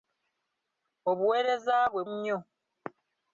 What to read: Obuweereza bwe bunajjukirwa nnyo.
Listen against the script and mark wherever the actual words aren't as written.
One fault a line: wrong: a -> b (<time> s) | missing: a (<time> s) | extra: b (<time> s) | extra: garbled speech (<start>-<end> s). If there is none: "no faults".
missing: bunajjukirwa (2.0 s)